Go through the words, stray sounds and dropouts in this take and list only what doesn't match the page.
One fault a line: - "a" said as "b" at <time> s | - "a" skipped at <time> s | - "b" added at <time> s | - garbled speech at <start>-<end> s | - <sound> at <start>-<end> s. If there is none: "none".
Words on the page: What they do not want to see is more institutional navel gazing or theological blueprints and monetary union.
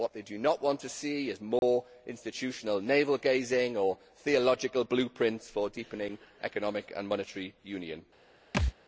- dropout at 1.6-1.6 s
- "for deepening economic" added at 5.5 s
- thud at 8.5-8.7 s